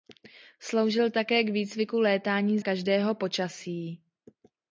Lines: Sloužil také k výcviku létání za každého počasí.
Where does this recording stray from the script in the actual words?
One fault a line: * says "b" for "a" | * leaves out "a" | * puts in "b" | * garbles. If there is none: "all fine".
* leaves out "za"